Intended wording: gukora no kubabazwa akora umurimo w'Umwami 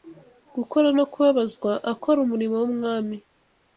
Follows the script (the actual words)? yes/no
yes